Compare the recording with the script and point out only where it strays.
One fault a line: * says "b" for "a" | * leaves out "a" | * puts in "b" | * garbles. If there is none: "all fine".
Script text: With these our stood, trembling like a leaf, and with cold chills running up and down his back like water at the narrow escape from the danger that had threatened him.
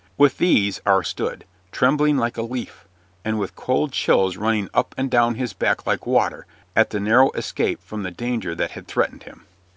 all fine